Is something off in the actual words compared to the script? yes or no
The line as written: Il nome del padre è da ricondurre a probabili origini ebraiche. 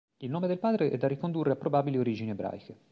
no